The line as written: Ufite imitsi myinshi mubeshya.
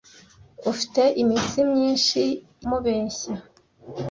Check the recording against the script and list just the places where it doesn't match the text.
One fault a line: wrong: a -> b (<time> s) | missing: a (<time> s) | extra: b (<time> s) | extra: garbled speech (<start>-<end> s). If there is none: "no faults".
no faults